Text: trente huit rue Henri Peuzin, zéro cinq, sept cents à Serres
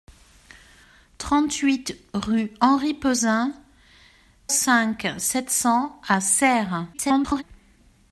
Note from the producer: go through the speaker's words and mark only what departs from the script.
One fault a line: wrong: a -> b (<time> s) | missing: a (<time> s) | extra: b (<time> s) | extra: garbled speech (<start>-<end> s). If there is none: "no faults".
missing: zéro (3.5 s)
extra: garbled speech (6.9-7.4 s)